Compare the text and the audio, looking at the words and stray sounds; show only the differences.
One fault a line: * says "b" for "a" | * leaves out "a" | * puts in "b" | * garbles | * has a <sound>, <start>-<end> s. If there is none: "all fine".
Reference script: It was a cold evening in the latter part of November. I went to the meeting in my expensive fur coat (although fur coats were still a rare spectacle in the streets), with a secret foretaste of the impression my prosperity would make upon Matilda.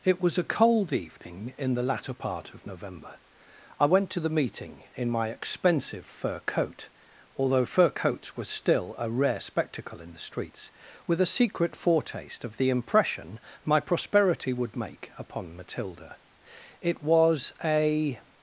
* puts in "It was a"